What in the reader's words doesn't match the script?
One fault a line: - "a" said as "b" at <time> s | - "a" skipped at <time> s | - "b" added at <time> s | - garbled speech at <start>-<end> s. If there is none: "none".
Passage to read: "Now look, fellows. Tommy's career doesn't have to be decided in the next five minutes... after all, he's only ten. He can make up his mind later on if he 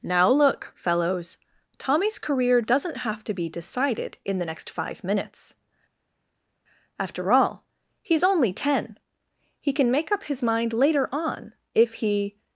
none